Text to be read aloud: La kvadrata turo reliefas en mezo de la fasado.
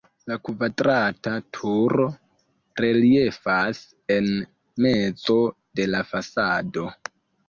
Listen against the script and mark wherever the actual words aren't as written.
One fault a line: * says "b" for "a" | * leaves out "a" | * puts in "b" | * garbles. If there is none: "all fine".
all fine